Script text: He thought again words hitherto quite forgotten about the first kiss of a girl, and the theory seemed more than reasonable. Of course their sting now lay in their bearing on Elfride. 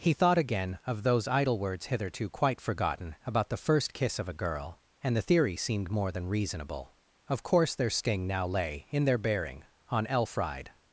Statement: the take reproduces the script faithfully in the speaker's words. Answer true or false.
false